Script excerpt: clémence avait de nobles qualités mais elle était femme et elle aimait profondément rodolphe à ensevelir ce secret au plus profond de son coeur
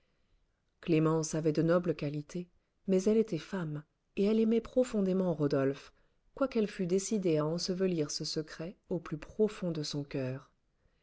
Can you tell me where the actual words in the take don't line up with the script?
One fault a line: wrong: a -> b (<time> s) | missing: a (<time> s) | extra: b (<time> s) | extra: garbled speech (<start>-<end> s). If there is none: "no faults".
extra: quoiqu'elle fût décidée (6.3 s)